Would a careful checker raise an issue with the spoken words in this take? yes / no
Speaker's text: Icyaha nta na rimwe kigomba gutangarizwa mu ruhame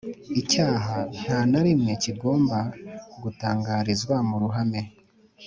no